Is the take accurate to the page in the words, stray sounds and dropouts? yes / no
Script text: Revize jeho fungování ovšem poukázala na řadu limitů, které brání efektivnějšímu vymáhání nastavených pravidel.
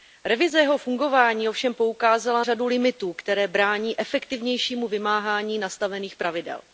no